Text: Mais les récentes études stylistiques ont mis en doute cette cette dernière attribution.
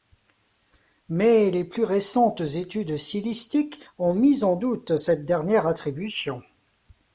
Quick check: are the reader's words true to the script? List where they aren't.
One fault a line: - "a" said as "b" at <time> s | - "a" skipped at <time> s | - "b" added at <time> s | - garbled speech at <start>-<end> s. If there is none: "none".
- "plus" added at 1.6 s
- "cette" skipped at 5.3 s